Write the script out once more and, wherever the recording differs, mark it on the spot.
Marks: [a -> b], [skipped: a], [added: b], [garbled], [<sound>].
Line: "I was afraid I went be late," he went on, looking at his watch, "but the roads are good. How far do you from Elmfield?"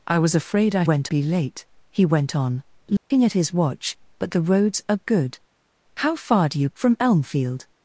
"I was afraid I went be late," he went on, looking [dropout] at his watch, "but the roads are good. How far do you from Elmfield?"